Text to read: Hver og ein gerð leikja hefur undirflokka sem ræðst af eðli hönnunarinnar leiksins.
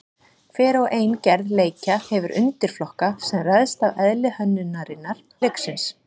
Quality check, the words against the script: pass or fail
pass